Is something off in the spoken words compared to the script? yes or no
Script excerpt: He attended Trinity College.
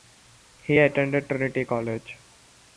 no